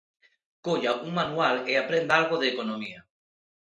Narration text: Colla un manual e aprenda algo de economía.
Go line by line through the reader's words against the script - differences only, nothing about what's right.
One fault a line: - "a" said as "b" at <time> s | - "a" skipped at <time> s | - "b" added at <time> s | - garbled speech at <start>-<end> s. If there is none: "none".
none